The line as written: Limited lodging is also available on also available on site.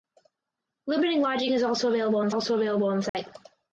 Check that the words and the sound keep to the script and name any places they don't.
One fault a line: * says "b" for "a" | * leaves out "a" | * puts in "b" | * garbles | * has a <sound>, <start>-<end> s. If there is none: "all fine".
* has a dropout, 3.1-3.1 s